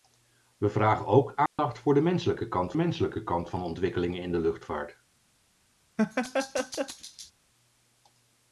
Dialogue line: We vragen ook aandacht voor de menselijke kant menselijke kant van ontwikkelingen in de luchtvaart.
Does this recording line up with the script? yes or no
yes